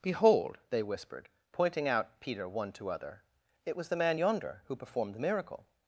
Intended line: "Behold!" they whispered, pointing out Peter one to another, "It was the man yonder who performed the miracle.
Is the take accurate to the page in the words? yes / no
no